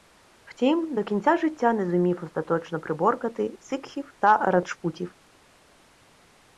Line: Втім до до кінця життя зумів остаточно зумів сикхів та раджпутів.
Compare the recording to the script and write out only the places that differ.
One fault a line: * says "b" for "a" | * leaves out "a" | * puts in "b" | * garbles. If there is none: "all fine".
* leaves out "до"
* puts in "не"
* says "приборкати" for "зумів"